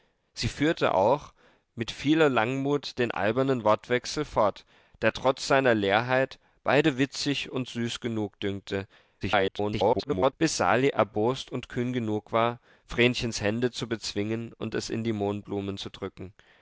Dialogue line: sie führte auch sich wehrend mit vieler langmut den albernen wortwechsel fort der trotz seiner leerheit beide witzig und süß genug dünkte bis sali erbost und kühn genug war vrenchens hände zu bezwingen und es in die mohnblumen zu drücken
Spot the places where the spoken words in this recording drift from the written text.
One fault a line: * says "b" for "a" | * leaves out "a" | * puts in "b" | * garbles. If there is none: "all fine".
* leaves out "sich wehrend"
* garbles